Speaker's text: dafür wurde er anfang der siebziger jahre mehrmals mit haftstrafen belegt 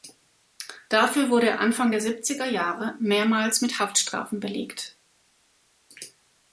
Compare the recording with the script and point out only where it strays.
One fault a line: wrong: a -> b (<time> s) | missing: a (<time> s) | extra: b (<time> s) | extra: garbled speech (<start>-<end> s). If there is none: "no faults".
no faults